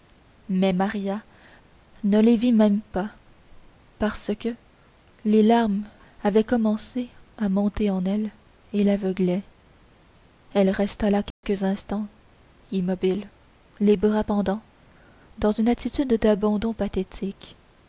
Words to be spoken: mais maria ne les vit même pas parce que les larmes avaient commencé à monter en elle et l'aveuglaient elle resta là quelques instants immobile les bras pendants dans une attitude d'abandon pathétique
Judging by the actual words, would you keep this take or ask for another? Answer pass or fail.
pass